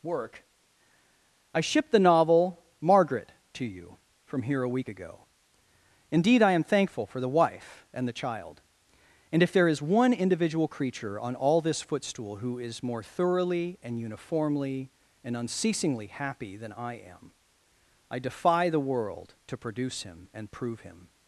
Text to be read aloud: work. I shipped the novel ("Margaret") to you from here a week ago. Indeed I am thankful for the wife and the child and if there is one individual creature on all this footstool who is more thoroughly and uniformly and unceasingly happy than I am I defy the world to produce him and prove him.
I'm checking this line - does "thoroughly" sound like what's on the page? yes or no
yes